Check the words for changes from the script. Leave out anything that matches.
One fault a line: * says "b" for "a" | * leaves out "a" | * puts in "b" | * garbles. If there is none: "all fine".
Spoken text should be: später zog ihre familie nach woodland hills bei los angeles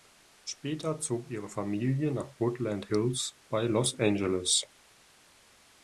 all fine